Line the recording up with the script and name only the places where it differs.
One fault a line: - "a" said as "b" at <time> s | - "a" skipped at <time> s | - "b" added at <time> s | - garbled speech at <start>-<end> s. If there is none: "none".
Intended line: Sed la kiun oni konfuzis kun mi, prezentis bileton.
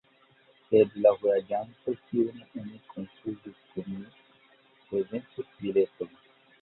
- "vojaĝanto" added at 1.2 s